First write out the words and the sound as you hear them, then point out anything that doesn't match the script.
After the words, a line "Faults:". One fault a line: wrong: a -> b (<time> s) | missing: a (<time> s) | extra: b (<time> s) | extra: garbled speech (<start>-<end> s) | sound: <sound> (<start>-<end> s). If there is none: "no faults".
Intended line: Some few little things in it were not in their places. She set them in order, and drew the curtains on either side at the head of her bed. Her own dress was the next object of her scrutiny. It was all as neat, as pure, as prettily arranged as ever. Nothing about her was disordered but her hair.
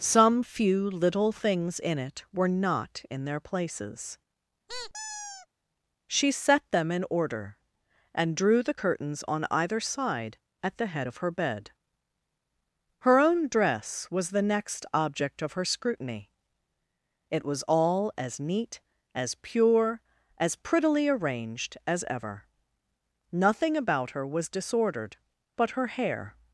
Some few little things in it were not in their places. She set them in order, and drew the curtains on either side at the head of her bed. Her own dress was the next object of her scrutiny. It was all as neat, as pure, as prettily arranged as ever. Nothing about her was disordered but her hair.
Faults:
sound: squeak (4.7-5.5 s)